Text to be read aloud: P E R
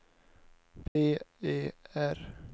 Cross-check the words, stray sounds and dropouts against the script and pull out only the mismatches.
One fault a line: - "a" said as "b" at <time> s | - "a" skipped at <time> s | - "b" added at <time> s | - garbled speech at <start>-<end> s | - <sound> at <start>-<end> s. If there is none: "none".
- dropout at 0.9-1.0 s